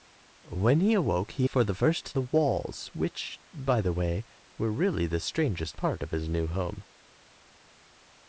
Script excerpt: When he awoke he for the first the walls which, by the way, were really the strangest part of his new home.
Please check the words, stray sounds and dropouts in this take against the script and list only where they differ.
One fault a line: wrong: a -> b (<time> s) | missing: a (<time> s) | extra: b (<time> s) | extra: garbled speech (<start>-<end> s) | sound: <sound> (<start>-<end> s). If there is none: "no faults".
no faults